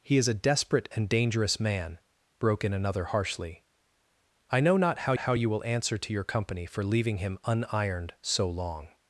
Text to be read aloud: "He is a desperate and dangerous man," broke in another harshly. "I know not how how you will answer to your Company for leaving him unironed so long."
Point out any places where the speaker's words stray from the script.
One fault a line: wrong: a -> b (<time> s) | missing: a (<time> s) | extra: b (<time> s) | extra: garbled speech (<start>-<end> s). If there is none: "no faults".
no faults